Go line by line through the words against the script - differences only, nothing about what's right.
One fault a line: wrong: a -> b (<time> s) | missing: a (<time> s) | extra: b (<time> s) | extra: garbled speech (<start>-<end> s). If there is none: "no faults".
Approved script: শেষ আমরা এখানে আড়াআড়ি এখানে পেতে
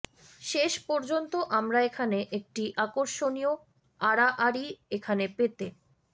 extra: পর্যন্ত (0.9 s)
extra: একটি আকর্ষণীয় (2.4 s)